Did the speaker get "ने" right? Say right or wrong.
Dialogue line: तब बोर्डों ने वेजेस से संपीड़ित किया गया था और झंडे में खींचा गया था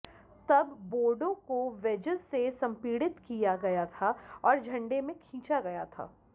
wrong